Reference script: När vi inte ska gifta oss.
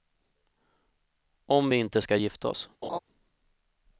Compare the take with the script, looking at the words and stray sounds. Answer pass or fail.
fail